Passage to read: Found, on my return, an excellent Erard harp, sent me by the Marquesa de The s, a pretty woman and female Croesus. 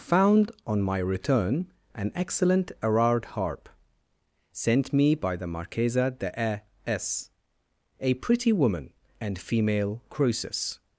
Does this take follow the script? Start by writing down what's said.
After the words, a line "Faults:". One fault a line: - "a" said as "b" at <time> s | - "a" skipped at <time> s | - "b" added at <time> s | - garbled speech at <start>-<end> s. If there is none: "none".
Found, on my return, an excellent Erard harp, sent me by the Marquesa de A s, a pretty woman and female Croesus.
Faults:
- "The" said as "A" at 6.4 s